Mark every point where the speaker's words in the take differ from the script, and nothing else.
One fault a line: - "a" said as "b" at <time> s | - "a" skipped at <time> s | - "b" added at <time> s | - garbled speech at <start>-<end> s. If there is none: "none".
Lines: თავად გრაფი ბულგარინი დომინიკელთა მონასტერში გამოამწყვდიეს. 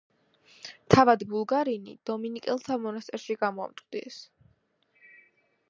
- "გრაფი" skipped at 1.2 s